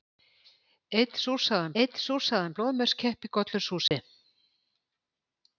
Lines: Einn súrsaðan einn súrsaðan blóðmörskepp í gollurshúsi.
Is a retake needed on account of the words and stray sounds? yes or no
yes